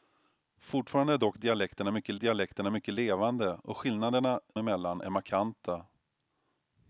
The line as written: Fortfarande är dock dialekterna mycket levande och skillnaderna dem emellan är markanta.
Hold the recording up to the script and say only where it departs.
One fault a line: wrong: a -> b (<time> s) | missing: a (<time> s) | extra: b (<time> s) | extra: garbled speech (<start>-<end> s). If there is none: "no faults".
extra: dialekterna mycket (2.2 s)
missing: dem (4.4 s)